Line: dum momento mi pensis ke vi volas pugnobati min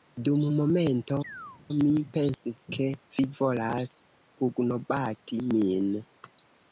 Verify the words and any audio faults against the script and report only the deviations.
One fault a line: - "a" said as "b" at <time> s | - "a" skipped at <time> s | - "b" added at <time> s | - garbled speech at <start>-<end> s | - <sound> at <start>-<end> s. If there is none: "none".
- chirp at 1.2-1.6 s